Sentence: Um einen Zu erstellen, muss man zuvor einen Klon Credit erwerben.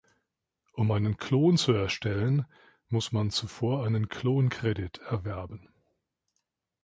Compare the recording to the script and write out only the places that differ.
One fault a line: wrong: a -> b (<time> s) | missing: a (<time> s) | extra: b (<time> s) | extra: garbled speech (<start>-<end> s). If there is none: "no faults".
extra: Klon (1.2 s)